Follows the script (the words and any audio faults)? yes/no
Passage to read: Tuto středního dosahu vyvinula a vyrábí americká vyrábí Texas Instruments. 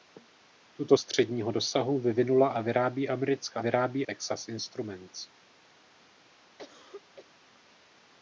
no